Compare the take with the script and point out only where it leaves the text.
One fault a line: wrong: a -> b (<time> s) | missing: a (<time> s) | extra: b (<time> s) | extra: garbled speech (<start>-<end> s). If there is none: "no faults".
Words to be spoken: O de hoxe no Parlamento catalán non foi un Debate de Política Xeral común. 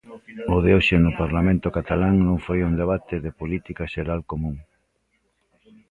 no faults